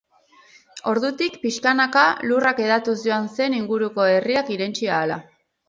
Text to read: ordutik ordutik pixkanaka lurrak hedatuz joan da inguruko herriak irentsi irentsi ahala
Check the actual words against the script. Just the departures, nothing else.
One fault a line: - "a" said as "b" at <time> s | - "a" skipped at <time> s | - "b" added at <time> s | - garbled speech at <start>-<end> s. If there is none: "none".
- "ordutik" skipped at 1.4 s
- "da" said as "zen" at 3.4 s
- "irentsi" skipped at 4.9 s